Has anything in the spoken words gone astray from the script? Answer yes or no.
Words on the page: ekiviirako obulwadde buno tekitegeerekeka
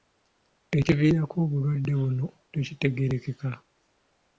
no